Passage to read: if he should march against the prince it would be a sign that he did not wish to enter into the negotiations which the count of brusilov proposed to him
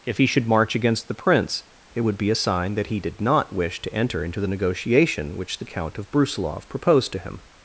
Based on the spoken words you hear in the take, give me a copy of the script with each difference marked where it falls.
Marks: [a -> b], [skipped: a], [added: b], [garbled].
if he should march against the prince it would be a sign that he did not wish to enter into the [negotiations -> negotiation] which the count of brusilov proposed to him